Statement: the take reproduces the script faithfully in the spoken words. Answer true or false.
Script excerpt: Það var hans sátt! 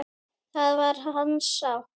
true